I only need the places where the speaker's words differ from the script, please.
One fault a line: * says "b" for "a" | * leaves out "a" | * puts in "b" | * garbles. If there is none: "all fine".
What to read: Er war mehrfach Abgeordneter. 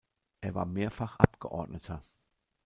all fine